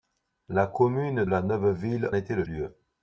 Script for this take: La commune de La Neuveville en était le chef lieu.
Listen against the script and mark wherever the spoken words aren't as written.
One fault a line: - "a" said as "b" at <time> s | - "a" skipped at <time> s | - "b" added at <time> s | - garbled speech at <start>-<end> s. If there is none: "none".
- "de" skipped at 1.2 s
- "en" skipped at 2.1 s
- "chef" skipped at 2.5 s